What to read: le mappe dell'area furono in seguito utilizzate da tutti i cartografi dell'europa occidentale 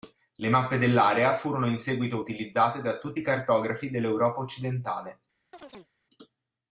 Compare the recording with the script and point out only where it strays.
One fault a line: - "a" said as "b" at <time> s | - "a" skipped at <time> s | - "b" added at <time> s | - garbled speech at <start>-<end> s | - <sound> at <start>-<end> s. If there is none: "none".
- chirp at 5.5-5.9 s